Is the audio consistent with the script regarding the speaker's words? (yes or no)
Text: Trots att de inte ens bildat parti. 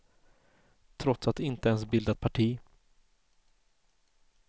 yes